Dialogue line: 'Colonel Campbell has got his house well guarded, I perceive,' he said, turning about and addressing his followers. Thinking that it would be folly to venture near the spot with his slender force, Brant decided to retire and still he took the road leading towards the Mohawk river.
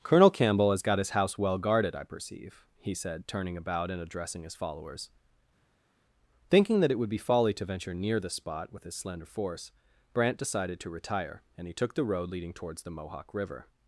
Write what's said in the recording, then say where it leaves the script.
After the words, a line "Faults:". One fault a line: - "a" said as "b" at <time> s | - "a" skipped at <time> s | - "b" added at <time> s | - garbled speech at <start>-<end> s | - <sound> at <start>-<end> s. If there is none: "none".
'Colonel Campbell has got his house well guarded, I perceive,' he said, turning about and addressing his followers. Thinking that it would be folly to venture near the spot with his slender force, Brant decided to retire and he took the road leading towards the Mohawk river.
Faults:
- "still" skipped at 11.7 s